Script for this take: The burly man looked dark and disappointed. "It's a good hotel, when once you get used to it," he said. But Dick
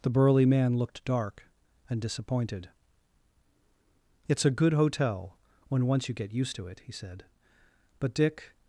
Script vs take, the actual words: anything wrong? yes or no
no